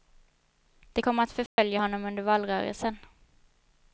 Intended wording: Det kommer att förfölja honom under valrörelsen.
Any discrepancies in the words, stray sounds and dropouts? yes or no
yes